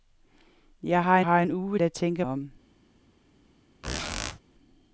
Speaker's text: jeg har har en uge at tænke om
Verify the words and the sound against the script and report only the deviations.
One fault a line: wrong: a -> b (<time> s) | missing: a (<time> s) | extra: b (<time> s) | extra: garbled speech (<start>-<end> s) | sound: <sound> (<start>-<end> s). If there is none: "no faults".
sound: squeak (3.8-4.4 s)